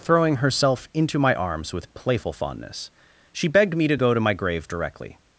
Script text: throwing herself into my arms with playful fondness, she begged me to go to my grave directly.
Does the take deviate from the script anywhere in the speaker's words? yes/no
no